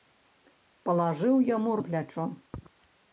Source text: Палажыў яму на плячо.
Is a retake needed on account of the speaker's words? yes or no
no